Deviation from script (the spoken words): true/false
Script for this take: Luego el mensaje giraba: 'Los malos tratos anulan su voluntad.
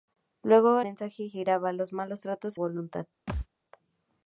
true